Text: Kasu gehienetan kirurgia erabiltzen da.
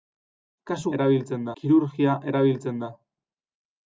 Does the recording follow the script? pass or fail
fail